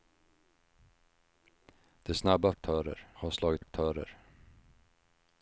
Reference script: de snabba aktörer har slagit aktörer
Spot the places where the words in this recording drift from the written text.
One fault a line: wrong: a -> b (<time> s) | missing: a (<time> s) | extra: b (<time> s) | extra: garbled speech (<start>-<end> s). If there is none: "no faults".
no faults